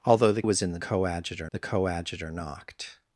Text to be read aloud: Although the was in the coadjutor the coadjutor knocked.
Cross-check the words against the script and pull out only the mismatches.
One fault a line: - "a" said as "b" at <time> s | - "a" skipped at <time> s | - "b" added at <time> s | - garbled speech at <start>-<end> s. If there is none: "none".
none